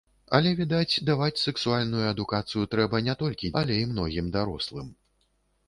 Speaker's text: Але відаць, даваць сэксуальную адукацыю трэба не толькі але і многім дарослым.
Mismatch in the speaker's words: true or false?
false